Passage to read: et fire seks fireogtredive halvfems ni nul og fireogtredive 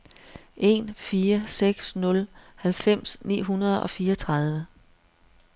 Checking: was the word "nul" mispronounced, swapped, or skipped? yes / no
yes